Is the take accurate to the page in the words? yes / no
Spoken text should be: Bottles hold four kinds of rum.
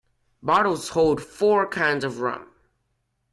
yes